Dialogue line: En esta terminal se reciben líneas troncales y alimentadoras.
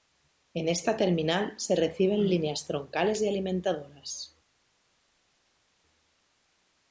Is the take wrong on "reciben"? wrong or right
right